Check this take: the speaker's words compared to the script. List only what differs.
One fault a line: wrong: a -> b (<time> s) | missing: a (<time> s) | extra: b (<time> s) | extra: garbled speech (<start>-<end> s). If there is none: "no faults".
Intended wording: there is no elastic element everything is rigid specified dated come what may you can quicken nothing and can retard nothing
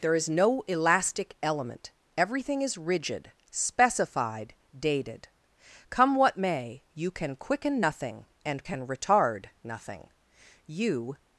extra: you (10.7 s)